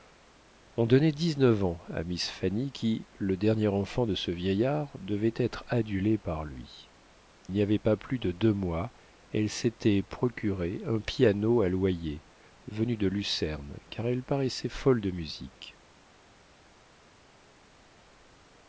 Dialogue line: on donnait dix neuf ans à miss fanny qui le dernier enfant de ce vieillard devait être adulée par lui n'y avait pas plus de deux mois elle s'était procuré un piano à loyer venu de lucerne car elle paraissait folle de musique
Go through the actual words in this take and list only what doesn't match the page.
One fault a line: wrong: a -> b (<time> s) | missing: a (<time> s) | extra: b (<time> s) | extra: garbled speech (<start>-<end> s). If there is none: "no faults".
no faults